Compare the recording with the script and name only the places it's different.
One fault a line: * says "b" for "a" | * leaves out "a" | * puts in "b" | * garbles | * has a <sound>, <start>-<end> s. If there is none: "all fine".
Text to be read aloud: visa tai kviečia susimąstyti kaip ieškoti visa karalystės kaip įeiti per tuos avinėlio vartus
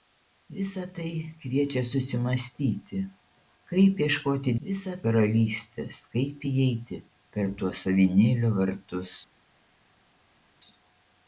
all fine